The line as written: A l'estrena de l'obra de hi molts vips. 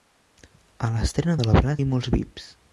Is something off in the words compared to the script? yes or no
no